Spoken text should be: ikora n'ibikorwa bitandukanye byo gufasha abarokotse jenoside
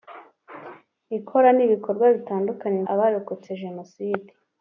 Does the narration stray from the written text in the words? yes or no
yes